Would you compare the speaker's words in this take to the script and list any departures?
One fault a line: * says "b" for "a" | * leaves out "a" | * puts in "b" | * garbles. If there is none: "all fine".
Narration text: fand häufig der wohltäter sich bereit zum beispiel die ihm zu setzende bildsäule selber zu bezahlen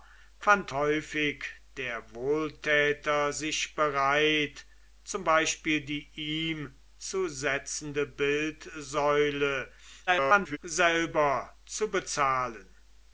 * garbles